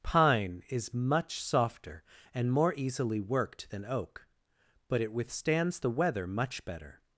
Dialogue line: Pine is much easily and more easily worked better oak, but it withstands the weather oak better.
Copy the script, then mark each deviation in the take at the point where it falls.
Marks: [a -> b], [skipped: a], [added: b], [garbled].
Pine is much [easily -> softer] and more easily worked [better -> than] oak, but it withstands the weather [oak -> much] better.